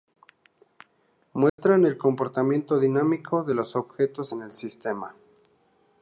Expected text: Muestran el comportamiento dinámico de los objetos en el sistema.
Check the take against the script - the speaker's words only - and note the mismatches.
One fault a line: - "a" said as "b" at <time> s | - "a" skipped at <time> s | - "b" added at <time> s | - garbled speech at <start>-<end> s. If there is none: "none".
none